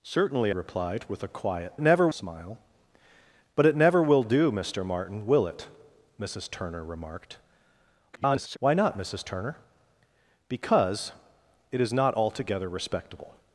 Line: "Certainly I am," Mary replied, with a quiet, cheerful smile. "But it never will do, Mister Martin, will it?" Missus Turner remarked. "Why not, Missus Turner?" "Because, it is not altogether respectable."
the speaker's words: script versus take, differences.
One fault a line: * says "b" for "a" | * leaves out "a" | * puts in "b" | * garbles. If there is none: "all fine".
* leaves out "I am Mary"
* says "never" for "cheerful"
* garbles